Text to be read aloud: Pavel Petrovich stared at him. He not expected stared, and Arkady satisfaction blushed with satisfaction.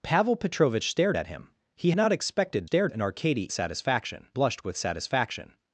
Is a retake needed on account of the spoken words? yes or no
no